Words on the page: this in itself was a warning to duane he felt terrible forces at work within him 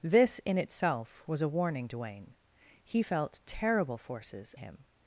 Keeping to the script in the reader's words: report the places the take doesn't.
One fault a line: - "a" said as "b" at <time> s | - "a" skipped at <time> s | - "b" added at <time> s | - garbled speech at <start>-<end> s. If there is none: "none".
- "to" skipped at 1.9 s
- "at work within" skipped at 4.6 s